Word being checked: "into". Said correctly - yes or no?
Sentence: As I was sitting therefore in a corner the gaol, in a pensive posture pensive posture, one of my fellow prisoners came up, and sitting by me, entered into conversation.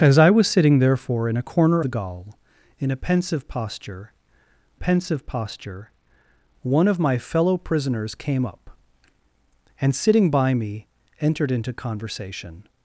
yes